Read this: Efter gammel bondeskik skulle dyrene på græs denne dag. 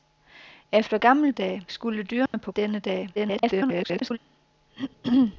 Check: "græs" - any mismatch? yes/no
yes